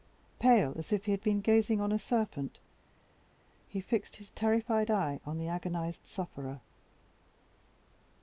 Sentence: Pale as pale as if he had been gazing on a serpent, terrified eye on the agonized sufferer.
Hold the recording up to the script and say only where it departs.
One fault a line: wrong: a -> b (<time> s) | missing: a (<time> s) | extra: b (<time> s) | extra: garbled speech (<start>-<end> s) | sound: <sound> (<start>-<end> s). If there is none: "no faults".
missing: pale as (0.9 s)
extra: he fixed his (3.7 s)